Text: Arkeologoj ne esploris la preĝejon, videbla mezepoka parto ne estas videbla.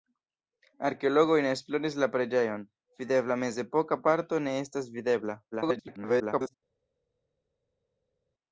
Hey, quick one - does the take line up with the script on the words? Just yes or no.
no